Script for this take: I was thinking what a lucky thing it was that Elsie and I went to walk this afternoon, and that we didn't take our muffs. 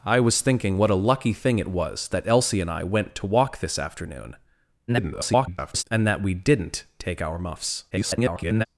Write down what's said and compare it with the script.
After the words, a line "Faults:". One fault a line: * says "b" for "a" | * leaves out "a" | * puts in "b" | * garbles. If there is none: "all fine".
I was thinking what a lucky thing it was that Elsie and I went to walk this afternoon, [garbled] and that we didn't take our muffs. [garbled]
Faults:
* garbles
* garbles